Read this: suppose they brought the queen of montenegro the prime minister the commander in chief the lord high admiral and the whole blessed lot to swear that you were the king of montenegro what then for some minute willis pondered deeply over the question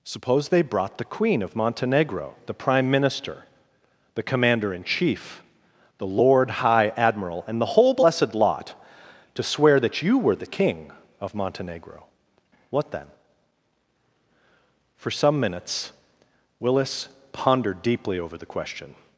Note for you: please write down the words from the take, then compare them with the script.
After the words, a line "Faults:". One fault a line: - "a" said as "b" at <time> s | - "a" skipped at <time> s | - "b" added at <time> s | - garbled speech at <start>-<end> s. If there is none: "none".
suppose they brought the queen of montenegro the prime minister the commander in chief the lord high admiral and the whole blessed lot to swear that you were the king of montenegro what then for some minutes willis pondered deeply over the question
Faults:
- "minute" said as "minutes" at 15.4 s